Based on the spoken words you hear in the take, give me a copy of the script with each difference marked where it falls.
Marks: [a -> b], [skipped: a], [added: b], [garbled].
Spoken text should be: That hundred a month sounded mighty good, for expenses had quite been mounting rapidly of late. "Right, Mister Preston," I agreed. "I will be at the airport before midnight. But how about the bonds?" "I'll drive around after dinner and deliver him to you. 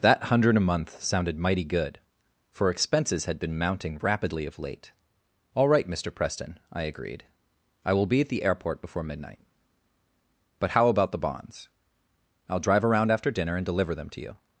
That hundred a month sounded mighty good, for expenses had [skipped: quite] been mounting rapidly of late. [added: All] "Right, Mister Preston," I agreed. "I will be at the airport before midnight. But how about the bonds?" "I'll drive around after dinner and deliver [him -> them] to you.